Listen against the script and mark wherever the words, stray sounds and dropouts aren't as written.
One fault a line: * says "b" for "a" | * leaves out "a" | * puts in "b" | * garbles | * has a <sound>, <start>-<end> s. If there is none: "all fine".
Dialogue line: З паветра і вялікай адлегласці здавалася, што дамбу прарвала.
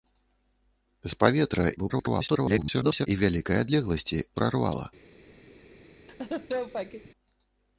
* garbles
* leaves out "здавалася што дамбу"
* has a laugh, 6.1-7.1 s